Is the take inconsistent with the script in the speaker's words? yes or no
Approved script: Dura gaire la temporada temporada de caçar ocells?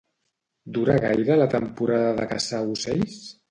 yes